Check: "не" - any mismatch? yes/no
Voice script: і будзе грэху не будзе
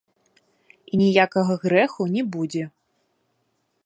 no